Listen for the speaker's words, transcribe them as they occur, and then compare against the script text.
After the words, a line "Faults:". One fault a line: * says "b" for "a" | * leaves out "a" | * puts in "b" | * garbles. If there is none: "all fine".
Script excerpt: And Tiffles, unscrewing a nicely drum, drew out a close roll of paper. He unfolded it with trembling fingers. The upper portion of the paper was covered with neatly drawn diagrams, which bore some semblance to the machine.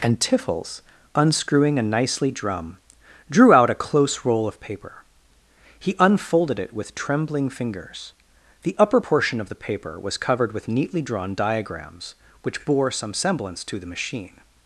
And Tiffles, unscrewing a nicely drum, drew out a close roll of paper. He unfolded it with trembling fingers. The upper portion of the paper was covered with neatly drawn diagrams, which bore some semblance to the machine.
Faults:
all fine